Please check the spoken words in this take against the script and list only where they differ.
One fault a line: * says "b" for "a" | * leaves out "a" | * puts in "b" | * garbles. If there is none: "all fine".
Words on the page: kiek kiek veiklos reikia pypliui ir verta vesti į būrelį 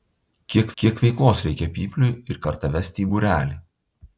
all fine